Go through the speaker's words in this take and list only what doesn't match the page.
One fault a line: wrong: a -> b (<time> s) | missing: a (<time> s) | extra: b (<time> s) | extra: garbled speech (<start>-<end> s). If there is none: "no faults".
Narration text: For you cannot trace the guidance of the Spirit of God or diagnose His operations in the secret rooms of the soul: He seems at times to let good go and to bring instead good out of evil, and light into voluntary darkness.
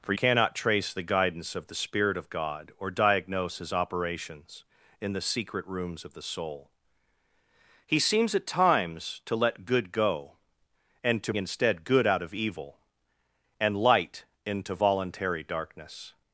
missing: you (0.1 s)
missing: bring (11.3 s)